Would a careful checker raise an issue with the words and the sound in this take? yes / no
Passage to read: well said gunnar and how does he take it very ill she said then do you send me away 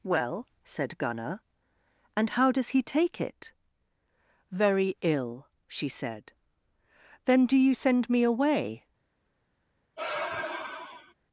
yes